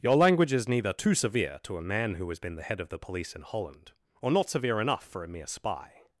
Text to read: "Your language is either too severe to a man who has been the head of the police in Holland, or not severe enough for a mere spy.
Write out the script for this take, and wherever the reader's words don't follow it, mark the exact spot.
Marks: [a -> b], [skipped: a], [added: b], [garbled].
"Your language is [either -> neither] too severe to a man who has been the head of the police in Holland, or not severe enough for a mere spy.